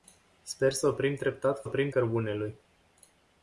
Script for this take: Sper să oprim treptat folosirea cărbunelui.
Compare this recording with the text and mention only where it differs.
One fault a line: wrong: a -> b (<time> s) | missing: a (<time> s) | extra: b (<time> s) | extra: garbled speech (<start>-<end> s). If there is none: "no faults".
wrong: folosirea -> oprim (1.6 s)